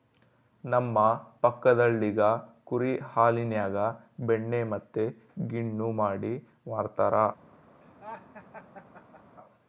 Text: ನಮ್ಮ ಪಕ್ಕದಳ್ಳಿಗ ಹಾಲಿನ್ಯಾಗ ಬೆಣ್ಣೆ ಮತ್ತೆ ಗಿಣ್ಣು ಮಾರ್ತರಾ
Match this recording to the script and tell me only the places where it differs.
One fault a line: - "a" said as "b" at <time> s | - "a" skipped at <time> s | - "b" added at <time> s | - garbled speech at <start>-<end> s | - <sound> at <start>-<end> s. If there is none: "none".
- "ಕುರಿ" added at 2.6 s
- "ಮಾಡಿ" added at 6.0 s
- laugh at 7.8-9.4 s